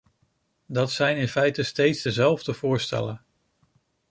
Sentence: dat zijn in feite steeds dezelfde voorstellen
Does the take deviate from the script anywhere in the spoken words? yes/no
no